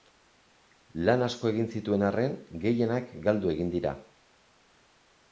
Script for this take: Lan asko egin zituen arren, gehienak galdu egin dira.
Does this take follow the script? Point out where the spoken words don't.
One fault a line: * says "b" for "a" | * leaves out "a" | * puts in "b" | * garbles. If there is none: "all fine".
all fine